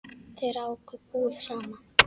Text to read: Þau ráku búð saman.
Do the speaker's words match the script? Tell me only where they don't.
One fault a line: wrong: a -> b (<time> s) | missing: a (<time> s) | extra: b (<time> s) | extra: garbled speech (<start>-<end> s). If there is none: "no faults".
no faults